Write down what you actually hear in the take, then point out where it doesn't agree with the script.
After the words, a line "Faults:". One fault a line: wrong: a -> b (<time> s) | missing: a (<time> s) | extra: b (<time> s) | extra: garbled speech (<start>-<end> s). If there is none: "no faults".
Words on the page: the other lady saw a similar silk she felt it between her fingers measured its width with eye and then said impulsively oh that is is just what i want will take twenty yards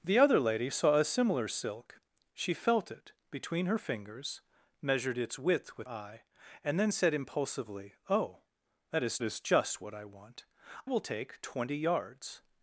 the other lady saw a similar silk she felt it between her fingers measured its width with eye and then said impulsively oh that is is just what i want will take twenty yards
Faults:
no faults